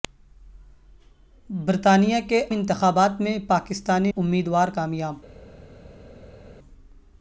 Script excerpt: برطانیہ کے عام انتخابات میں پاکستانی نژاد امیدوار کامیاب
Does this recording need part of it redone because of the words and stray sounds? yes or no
yes